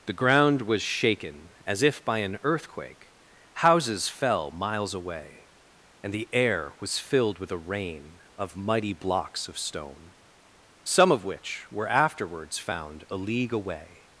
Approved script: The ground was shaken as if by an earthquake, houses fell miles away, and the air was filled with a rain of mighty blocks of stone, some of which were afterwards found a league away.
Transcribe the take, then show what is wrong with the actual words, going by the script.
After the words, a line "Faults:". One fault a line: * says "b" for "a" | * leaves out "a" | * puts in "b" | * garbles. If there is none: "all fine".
The ground was shaken as if by an earthquake, houses fell miles away, and the air was filled with a rain of mighty blocks of stone, some of which were afterwards found a league away.
Faults:
all fine